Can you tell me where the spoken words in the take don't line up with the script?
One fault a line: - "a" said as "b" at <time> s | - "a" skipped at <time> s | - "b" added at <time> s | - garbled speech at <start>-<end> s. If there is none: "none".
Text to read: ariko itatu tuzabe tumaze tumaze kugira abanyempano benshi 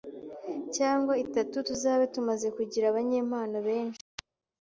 - "ariko" said as "cyangwa" at 0.8 s
- "tumaze" skipped at 2.5 s